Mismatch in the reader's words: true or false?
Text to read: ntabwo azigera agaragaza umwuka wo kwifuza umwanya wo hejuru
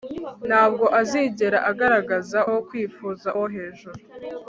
true